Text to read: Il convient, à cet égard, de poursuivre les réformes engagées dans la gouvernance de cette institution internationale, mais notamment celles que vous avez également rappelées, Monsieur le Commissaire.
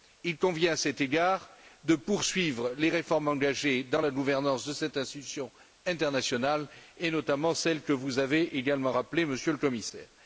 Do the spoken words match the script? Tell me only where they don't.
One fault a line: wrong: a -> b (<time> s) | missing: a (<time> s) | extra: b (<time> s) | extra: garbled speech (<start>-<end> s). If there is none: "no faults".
wrong: mais -> et (7.0 s)